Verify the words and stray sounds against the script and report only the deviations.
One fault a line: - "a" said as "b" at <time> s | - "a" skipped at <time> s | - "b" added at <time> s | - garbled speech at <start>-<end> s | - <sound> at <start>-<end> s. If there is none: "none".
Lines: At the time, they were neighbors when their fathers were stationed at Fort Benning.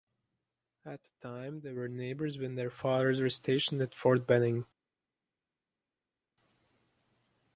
none